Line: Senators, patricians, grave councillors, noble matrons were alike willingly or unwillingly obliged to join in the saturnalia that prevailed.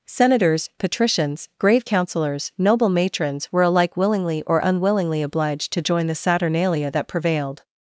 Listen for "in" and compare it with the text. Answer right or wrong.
wrong